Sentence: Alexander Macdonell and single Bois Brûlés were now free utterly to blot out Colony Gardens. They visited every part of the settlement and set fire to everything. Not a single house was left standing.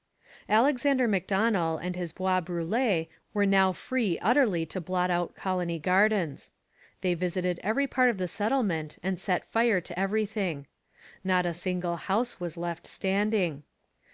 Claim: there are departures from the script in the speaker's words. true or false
true